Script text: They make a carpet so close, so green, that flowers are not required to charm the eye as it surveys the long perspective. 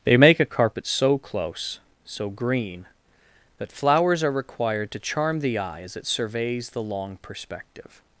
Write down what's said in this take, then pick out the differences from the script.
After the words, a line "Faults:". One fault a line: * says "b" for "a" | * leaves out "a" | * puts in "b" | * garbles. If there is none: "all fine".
They make a carpet so close, so green, that flowers are required to charm the eye as it surveys the long perspective.
Faults:
* leaves out "not"